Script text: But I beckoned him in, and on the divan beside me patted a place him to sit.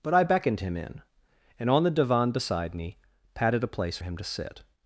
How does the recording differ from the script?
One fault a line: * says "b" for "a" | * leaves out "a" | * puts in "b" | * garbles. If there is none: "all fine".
all fine